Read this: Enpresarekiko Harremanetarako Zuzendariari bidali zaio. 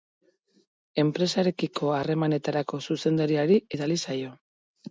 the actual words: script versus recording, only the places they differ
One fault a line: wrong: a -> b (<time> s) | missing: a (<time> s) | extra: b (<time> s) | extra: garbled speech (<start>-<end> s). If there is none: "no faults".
no faults